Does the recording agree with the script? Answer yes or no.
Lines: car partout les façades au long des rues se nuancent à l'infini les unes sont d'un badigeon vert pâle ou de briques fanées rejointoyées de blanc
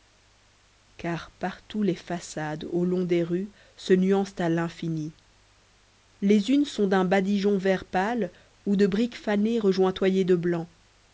yes